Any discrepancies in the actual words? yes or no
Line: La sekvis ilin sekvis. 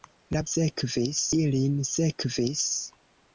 no